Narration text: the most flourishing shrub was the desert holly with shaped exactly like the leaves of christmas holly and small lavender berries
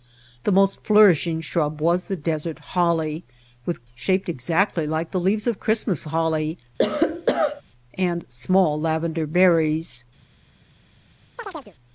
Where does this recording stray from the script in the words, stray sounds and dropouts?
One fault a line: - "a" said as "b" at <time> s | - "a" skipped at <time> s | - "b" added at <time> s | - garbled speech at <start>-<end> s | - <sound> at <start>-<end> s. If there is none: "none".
- cough at 6.8-7.6 s
- chirp at 11.4-11.8 s